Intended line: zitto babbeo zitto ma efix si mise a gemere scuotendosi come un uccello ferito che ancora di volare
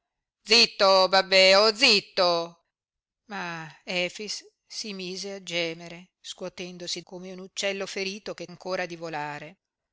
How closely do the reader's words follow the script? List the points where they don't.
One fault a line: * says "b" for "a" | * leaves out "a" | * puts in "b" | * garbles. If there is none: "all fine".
all fine